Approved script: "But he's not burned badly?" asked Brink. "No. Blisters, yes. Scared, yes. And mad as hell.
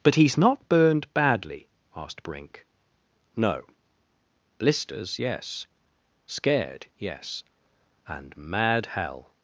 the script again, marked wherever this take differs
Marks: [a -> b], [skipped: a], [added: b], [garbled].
"But he's not burned badly?" asked Brink. "No. Blisters, yes. Scared, yes. And mad [skipped: as] hell.